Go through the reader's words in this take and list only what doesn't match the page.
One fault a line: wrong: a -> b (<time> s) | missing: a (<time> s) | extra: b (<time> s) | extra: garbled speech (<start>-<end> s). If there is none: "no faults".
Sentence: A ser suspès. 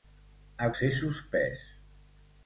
no faults